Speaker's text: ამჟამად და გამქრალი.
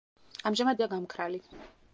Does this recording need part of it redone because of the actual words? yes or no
no